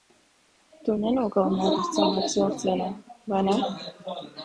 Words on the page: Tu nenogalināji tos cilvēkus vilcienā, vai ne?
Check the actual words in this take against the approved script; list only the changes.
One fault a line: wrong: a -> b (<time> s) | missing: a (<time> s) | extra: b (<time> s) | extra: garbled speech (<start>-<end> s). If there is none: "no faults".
no faults